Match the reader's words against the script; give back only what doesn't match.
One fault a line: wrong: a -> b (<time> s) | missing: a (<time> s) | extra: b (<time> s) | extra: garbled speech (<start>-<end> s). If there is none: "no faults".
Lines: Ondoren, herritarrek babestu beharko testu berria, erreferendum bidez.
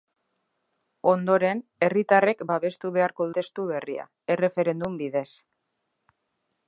no faults